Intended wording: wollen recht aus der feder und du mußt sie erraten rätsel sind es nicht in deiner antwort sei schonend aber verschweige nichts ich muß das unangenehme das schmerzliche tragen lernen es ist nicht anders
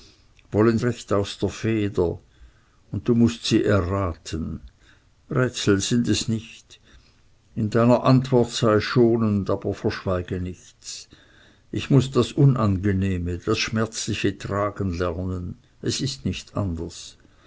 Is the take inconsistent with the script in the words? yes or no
no